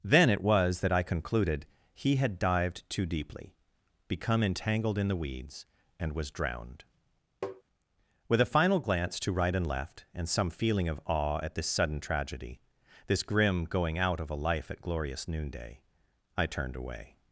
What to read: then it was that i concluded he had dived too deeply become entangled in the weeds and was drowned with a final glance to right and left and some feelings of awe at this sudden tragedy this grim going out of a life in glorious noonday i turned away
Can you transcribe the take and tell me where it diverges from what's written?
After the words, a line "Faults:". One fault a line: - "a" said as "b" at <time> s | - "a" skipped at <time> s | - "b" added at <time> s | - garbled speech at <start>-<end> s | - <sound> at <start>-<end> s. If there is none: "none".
then it was that i concluded he had dived too deeply become entangled in the weeds and was drowned with a final glance to right and left and some feeling of awe at this sudden tragedy this grim going out of a life at glorious noonday i turned away
Faults:
- tap at 7.4-7.6 s
- "feelings" said as "feeling" at 10.5 s
- "in" said as "at" at 14.7 s